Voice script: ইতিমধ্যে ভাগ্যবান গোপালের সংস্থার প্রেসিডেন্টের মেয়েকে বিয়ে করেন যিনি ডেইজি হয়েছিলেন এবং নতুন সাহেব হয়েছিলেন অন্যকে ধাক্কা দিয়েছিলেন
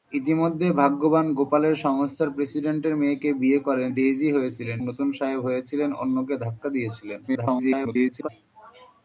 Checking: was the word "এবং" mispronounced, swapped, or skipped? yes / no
yes